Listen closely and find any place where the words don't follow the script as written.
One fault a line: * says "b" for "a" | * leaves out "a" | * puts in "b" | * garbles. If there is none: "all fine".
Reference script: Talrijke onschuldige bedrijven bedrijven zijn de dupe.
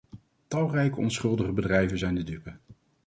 * leaves out "bedrijven"